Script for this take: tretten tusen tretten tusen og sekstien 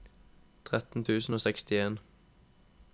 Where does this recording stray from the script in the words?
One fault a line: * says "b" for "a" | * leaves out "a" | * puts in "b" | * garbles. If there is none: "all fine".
* leaves out "tretten tusen"